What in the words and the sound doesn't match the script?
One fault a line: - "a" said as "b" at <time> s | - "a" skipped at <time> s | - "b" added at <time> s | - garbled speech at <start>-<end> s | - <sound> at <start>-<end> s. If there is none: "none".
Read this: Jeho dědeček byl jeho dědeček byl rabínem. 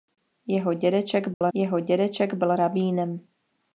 - dropout at 1.3-1.4 s